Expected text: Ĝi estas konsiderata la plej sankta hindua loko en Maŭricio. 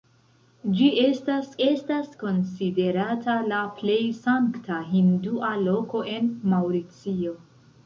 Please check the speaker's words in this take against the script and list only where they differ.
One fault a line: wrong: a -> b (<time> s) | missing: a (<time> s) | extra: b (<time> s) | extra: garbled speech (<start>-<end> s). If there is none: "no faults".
extra: estas (1.6 s)